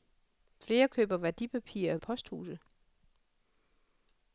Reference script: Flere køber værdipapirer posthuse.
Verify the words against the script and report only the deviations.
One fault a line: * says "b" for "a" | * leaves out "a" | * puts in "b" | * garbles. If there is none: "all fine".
all fine